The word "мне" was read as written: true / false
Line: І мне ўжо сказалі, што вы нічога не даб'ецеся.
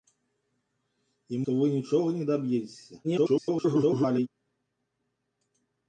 false